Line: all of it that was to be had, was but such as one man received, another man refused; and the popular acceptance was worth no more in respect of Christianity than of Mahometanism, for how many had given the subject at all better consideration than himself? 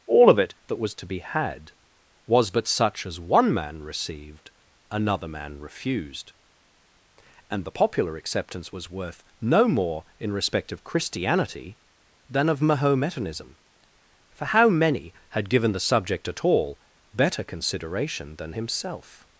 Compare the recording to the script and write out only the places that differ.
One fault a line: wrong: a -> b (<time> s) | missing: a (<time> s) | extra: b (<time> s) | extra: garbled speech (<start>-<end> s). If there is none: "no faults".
no faults